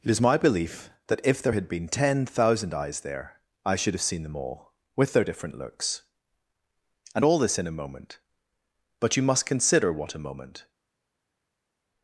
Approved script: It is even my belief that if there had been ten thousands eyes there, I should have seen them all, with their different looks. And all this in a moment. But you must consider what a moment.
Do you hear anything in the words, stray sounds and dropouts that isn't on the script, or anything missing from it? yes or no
yes